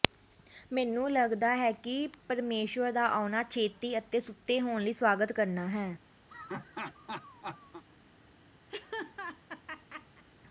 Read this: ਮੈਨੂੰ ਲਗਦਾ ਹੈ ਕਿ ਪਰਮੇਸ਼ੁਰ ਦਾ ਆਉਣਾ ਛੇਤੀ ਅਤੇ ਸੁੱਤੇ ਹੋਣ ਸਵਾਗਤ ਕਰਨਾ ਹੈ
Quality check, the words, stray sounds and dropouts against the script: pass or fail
fail